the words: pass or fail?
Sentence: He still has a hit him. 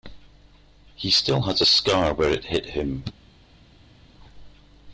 fail